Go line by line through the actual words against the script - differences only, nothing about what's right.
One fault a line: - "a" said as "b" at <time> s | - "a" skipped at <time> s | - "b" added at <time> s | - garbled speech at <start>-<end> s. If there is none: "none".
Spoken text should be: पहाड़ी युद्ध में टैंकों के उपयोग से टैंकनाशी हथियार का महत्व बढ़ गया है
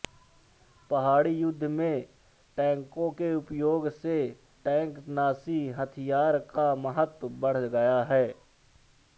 none